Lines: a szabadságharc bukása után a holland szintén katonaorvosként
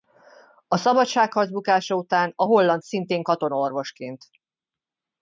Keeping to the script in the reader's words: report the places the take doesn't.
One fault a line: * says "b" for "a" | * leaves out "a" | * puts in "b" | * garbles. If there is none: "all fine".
all fine